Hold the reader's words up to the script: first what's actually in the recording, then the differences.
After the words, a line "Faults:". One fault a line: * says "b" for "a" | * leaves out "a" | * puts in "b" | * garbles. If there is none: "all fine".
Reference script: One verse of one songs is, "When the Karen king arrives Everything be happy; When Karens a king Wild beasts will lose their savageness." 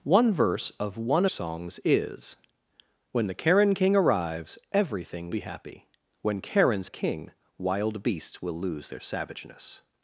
One verse of one songs is, "When the Karen king arrives Everything be happy; When Karens a king Wild beasts will lose their savageness."
Faults:
all fine